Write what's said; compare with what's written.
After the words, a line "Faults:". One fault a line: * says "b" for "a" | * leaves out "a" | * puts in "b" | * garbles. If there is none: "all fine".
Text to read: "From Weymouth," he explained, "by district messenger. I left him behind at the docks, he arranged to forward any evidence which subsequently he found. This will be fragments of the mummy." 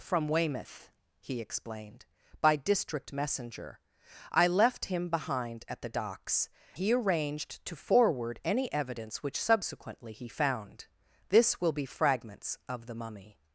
"From Weymouth," he explained, "by district messenger. I left him behind at the docks, he arranged to forward any evidence which subsequently he found. This will be fragments of the mummy."
Faults:
all fine